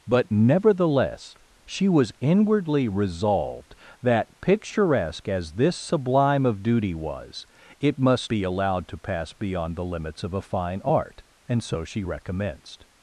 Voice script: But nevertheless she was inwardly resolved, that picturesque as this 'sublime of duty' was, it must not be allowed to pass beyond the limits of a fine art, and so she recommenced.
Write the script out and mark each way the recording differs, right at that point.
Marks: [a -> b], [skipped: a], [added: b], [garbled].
But nevertheless she was inwardly resolved, that picturesque as this 'sublime of duty' was, it must [skipped: not] be allowed to pass beyond the limits of a fine art, and so she recommenced.